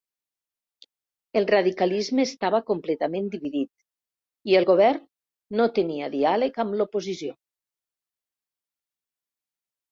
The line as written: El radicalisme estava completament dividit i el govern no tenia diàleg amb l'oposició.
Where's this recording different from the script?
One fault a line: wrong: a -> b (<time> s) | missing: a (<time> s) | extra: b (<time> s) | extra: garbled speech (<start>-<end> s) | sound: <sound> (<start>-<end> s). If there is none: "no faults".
no faults